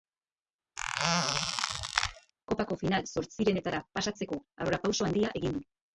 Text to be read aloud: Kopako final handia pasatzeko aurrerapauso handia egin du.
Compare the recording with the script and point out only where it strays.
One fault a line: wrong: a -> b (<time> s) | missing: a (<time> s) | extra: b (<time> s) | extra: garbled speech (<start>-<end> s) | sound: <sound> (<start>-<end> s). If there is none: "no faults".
sound: squeak (0.8-2.3 s)
wrong: handia -> zortzirenetara (3.1 s)